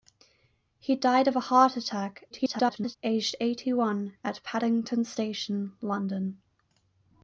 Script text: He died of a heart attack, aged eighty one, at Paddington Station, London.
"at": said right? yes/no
yes